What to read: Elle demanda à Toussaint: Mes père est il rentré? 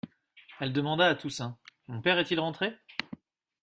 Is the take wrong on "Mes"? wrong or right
wrong